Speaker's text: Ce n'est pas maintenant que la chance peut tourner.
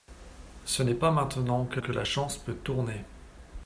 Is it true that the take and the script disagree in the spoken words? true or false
true